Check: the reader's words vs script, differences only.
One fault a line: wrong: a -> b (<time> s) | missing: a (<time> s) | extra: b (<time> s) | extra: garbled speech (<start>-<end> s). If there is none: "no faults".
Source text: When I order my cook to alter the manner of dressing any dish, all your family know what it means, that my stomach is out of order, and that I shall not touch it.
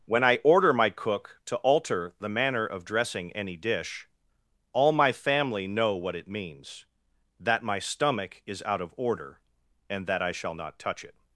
wrong: your -> my (4.9 s)